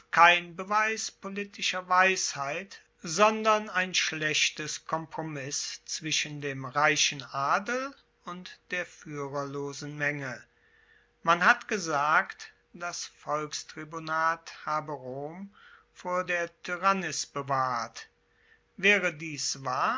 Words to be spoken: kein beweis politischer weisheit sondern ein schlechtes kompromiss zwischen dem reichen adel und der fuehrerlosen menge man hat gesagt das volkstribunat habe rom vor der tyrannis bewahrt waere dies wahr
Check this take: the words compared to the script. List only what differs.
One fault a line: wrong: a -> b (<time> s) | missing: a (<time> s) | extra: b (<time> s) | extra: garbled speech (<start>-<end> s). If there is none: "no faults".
no faults